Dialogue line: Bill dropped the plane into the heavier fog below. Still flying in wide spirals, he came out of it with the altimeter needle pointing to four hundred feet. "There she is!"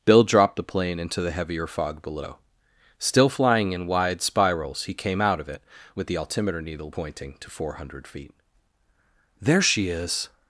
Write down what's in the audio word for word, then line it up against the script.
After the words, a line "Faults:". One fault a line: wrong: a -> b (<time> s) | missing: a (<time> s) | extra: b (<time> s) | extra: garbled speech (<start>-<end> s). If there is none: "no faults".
Bill dropped the plane into the heavier fog below. Still flying in wide spirals, he came out of it with the altimeter needle pointing to four hundred feet. "There she is!"
Faults:
no faults